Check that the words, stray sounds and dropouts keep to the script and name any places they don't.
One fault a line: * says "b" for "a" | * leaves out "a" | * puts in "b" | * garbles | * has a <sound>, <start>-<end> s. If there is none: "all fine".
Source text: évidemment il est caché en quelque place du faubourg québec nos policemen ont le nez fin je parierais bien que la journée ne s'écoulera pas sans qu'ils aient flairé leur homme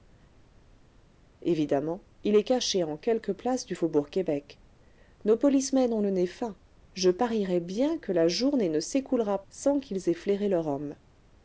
* leaves out "pas"